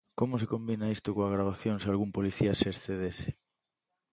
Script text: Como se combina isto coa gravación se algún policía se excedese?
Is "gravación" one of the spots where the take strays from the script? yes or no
no